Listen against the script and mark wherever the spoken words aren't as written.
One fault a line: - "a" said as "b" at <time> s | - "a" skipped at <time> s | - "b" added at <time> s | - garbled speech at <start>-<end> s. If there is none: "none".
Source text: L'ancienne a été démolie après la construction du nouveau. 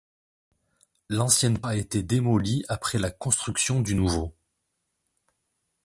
none